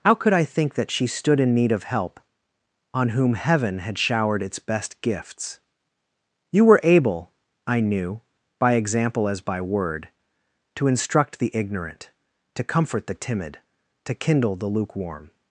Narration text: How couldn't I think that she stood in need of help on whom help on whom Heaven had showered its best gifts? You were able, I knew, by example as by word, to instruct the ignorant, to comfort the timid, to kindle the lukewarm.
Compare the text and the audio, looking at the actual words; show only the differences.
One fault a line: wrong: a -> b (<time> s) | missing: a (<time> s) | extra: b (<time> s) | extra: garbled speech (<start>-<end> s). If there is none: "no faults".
wrong: couldn't -> could (0.1 s)
missing: help on whom (3.4 s)